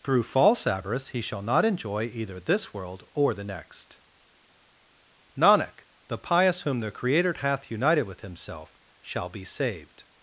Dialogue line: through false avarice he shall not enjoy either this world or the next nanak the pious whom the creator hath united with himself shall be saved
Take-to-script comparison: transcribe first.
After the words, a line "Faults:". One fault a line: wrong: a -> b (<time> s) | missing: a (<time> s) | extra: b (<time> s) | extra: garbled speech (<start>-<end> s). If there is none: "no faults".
through false avarice he shall not enjoy either this world or the next nanak the pious whom the creator hath united with himself shall be saved
Faults:
no faults